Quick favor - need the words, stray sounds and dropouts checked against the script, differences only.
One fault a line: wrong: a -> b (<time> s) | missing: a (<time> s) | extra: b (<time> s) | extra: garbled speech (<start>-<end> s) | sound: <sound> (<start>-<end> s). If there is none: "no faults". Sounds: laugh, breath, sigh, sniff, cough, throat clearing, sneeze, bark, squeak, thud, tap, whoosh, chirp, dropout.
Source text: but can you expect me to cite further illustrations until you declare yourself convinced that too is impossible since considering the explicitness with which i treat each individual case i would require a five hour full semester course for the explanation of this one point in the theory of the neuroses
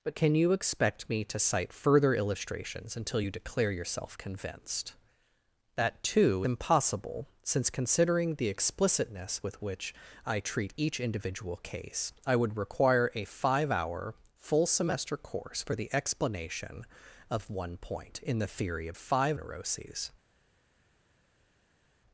missing: is (6.4 s)
missing: this (17.5 s)
wrong: the -> five (18.9 s)